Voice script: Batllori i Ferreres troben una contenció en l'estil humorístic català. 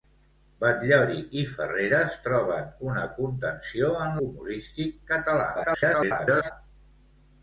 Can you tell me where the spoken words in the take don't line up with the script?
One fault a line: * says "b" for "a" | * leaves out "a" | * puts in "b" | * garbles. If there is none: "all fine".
* leaves out "l'estil"
* garbles